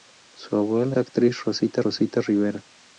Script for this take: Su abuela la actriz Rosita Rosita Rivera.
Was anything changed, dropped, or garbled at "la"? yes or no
no